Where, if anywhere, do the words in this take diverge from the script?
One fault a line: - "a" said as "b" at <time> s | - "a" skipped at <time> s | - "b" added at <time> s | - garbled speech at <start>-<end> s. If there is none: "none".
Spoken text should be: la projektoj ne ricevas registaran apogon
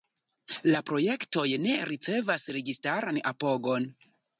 none